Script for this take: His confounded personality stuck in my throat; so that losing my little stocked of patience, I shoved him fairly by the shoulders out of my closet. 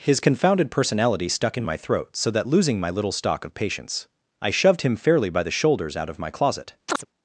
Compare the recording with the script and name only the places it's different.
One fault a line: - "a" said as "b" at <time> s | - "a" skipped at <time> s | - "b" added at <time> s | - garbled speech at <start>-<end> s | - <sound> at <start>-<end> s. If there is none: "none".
- "stocked" said as "stock" at 3.1 s
- chirp at 6.9-7.1 s